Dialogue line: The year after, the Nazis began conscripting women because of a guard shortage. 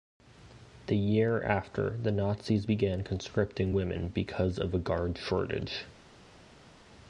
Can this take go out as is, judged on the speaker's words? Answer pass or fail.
pass